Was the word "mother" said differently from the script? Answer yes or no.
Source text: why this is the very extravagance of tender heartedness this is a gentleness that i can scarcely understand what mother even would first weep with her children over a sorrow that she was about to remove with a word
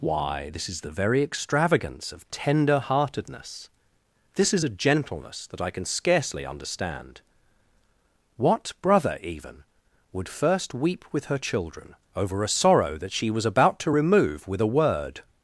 yes